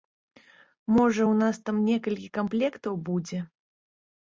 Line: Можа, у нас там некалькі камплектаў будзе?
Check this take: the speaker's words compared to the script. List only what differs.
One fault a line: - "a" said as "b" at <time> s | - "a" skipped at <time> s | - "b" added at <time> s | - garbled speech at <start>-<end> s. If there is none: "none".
none